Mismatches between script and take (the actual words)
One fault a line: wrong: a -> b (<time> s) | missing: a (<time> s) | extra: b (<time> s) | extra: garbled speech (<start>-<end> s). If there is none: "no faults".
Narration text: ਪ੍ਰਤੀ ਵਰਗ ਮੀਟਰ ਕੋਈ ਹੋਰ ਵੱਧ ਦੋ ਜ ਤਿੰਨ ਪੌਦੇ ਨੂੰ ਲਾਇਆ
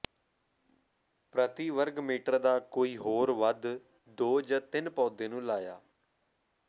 extra: ਦਾ (2.4 s)